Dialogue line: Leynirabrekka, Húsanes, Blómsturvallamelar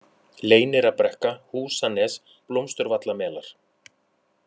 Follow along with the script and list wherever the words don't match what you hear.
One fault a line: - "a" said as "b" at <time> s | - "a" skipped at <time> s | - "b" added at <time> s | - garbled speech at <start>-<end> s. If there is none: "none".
none